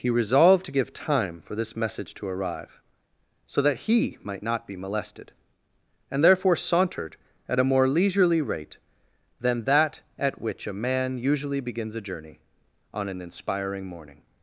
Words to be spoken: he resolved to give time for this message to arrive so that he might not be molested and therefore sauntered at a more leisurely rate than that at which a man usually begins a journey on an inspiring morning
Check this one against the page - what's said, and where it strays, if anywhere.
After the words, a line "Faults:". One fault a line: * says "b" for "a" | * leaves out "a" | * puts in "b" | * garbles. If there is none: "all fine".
he resolved to give time for this message to arrive so that he might not be molested and therefore sauntered at a more leisurely rate than that at which a man usually begins a journey on an inspiring morning
Faults:
all fine